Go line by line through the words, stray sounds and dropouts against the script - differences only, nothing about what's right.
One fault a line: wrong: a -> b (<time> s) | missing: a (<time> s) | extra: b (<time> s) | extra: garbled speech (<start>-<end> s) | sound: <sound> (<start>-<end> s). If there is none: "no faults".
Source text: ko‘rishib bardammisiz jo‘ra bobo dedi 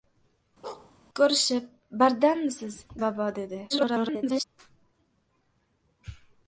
sound: bark (0.6-0.9 s)
missing: jo‘ra (2.8 s)
extra: garbled speech (3.7-4.4 s)